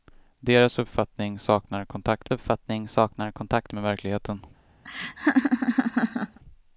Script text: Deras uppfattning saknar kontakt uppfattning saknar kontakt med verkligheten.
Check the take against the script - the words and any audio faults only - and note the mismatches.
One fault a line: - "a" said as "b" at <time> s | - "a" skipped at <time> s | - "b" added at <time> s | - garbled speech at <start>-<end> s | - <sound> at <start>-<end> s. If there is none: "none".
- laugh at 4.8-6.4 s